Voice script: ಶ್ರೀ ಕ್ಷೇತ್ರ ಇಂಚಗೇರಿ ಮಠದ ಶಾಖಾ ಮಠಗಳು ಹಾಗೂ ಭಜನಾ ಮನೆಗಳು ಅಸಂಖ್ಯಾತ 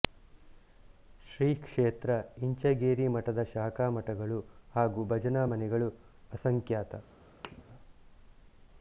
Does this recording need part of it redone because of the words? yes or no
no